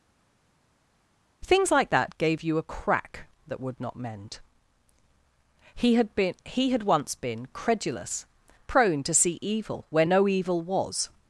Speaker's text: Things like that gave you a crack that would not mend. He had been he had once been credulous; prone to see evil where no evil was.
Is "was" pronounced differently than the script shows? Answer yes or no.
no